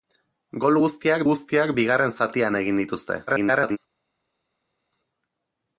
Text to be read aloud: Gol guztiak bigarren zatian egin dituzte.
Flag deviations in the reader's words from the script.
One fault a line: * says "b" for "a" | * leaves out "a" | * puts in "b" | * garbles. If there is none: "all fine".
* puts in "guztiak"
* garbles